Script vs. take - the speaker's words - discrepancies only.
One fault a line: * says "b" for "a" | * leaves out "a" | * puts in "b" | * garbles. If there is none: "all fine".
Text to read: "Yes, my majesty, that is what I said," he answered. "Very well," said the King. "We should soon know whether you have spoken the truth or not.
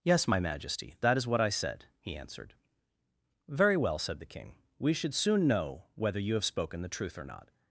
all fine